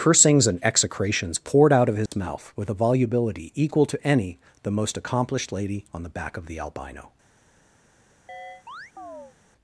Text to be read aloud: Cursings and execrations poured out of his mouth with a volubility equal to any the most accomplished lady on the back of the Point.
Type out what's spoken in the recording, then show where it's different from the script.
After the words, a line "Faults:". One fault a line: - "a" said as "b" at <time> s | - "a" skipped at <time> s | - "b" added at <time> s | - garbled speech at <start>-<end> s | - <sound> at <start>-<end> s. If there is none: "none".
Cursings and execrations poured out of his mouth with a volubility equal to any the most accomplished lady on the back of the Albino.
Faults:
- dropout at 2.1-2.1 s
- "Point" said as "Albino" at 6.6 s
- chirp at 8.3-9.4 s